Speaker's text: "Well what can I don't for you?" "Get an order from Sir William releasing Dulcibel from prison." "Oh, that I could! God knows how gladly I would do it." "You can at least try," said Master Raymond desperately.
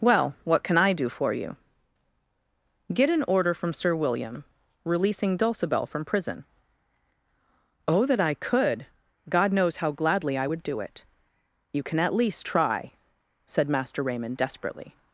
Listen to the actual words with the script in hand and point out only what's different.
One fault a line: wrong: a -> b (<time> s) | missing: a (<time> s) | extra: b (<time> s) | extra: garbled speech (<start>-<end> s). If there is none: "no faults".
wrong: don't -> do (0.9 s)